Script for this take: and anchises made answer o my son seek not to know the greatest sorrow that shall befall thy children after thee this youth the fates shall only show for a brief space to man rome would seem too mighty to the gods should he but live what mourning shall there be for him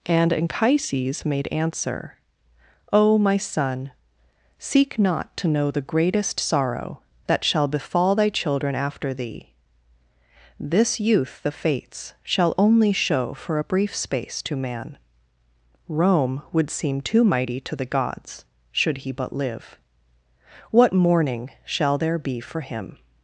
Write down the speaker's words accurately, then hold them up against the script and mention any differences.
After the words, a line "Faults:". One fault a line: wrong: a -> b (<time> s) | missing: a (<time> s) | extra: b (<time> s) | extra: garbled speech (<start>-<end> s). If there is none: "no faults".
and anchises made answer o my son seek not to know the greatest sorrow that shall befall thy children after thee this youth the fates shall only show for a brief space to man rome would seem too mighty to the gods should he but live what mourning shall there be for him
Faults:
no faults